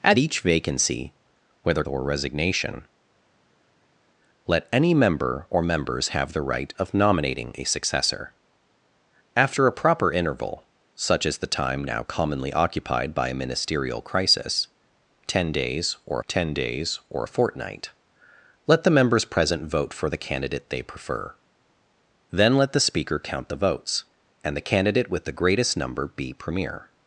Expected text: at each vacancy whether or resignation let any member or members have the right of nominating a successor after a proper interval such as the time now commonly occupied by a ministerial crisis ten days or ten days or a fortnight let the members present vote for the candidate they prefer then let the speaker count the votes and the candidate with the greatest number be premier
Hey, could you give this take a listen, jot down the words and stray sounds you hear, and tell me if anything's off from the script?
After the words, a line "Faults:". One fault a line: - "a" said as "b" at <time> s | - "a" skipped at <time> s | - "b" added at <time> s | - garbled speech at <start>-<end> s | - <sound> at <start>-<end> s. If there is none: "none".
at each vacancy whether or resignation let any member or members have the right of nominating a successor after a proper interval such as the time now commonly occupied by a ministerial crisis ten days or ten days or a fortnight let the members present vote for the candidate they prefer then let the speaker count the votes and the candidate with the greatest number be premier
Faults:
none